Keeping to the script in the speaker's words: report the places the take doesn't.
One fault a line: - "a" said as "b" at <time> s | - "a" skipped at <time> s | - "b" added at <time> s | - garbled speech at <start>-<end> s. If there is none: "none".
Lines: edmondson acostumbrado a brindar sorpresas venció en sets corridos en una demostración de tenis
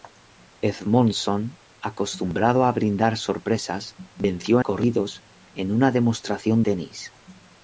- "en sets" skipped at 4.6 s
- "de" skipped at 6.6 s